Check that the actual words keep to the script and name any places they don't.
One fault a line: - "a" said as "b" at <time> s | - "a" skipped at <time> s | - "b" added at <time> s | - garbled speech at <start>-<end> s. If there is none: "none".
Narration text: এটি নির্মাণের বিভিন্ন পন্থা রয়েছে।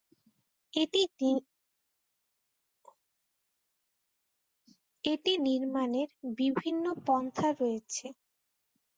none